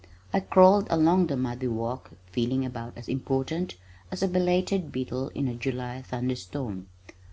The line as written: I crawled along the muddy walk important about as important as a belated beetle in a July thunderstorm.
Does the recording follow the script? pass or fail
fail